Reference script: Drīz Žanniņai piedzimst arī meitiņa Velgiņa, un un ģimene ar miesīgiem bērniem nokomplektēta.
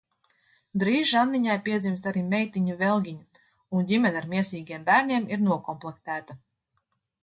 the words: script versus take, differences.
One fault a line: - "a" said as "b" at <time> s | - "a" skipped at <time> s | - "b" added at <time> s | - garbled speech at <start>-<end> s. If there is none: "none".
- "un" skipped at 3.9 s
- "ir" added at 5.4 s